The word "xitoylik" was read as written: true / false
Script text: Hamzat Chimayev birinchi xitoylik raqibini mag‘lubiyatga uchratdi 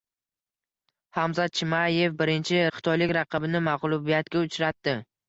true